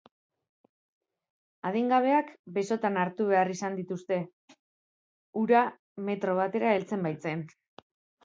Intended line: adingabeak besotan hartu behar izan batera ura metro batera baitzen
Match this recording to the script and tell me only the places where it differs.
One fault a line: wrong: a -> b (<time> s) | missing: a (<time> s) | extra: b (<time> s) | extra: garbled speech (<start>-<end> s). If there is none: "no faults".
wrong: batera -> dituzte (3.8 s)
extra: heltzen (6.8 s)